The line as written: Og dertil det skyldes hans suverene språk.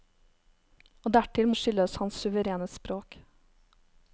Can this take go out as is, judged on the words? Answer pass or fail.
pass